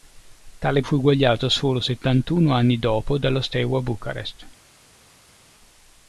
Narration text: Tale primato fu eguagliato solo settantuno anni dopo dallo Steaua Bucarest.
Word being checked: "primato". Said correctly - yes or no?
no